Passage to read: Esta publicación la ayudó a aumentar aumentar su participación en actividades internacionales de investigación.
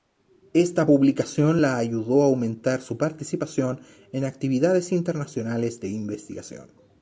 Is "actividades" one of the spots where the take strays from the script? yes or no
no